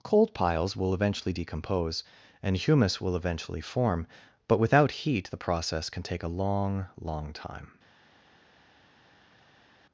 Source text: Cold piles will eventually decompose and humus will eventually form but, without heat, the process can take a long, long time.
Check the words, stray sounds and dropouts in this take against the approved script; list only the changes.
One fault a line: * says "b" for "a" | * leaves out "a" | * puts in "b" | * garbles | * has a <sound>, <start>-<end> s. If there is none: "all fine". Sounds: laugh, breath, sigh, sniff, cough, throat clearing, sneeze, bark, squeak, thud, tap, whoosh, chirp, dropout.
all fine